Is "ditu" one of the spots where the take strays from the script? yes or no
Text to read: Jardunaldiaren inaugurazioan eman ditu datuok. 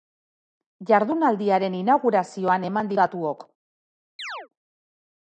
yes